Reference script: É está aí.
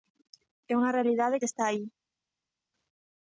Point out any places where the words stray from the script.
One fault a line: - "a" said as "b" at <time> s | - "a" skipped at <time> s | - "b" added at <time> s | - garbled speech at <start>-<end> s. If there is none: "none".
- "unha realidade que" added at 0.8 s